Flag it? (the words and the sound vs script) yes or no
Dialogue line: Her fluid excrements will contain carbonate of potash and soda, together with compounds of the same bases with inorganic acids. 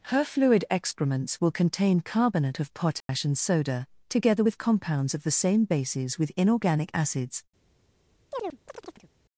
yes